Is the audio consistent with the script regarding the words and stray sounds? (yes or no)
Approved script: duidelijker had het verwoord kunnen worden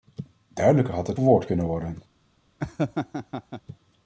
no